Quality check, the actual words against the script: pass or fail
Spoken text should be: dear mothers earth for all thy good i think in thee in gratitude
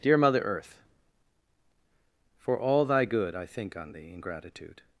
fail